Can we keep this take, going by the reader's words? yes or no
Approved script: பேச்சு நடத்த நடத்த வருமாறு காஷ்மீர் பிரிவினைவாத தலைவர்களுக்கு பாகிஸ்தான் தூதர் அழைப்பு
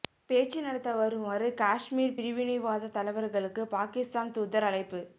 no